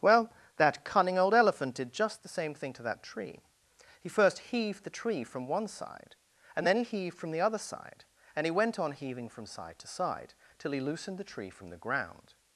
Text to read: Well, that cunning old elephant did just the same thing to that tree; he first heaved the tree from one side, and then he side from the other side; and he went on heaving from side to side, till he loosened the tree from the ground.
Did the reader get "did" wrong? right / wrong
right